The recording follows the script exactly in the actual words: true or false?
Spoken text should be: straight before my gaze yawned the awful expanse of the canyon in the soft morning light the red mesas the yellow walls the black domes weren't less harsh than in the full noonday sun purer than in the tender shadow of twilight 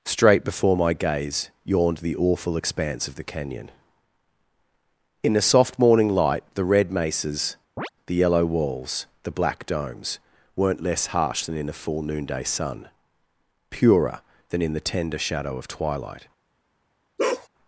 true